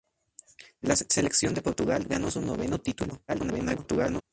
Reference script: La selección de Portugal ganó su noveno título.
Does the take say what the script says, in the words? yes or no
no